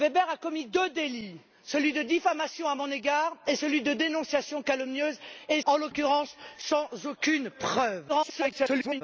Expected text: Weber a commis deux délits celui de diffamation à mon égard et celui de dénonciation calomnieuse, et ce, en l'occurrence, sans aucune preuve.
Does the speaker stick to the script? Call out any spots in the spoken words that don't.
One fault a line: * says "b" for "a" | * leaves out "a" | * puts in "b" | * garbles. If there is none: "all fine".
* leaves out "ce"
* garbles